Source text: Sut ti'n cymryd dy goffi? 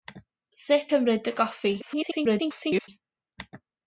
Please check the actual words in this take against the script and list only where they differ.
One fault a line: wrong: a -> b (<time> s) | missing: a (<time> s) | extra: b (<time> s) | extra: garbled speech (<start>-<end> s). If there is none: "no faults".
missing: ti'n (0.9 s)
extra: garbled speech (1.8-2.9 s)